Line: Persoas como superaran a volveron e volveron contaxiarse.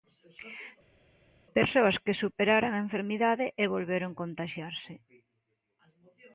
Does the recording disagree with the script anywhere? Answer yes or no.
yes